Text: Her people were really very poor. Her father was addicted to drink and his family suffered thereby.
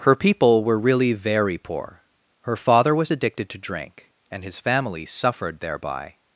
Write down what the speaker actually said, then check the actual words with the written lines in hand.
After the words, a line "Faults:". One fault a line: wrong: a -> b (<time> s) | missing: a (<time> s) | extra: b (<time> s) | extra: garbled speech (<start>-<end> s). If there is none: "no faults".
Her people were really very poor. Her father was addicted to drink and his family suffered thereby.
Faults:
no faults